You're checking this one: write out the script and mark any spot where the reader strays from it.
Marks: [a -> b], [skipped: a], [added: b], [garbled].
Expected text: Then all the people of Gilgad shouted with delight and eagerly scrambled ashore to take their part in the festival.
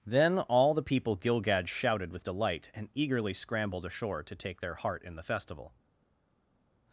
Then all the people [skipped: of] Gilgad shouted with delight and eagerly scrambled ashore to take their [part -> heart] in the festival.